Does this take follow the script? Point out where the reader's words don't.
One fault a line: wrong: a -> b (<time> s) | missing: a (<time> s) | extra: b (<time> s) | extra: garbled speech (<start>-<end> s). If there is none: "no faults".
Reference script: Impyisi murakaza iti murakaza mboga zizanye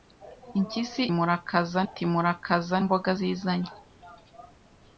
no faults